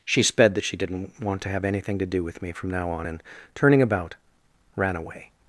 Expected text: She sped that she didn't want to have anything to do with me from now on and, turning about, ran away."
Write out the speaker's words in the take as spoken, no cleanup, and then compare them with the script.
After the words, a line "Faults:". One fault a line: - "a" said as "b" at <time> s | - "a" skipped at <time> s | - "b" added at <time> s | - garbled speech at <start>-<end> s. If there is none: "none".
She sped that she didn't want to have anything to do with me from now on and, turning about, ran away."
Faults:
none